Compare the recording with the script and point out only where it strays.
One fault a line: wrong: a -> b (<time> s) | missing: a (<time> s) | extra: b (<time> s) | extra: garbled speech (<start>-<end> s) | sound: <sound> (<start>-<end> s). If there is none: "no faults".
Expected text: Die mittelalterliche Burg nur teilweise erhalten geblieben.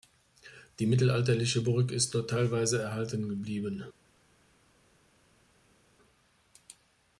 extra: ist (1.9 s)